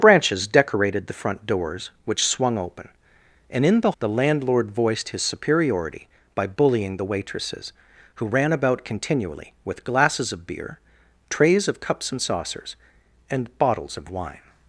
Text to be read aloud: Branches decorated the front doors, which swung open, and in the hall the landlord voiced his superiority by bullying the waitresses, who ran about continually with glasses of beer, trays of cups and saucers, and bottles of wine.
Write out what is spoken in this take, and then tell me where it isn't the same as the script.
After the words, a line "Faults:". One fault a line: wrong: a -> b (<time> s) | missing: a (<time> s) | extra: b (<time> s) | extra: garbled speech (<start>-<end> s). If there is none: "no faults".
Branches decorated the front doors, which swung open, and in the the landlord voiced his superiority by bullying the waitresses, who ran about continually with glasses of beer, trays of cups and saucers, and bottles of wine.
Faults:
missing: hall (3.9 s)